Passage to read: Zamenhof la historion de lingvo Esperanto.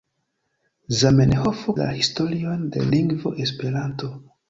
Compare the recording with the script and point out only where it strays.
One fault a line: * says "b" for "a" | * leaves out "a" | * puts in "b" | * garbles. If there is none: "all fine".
all fine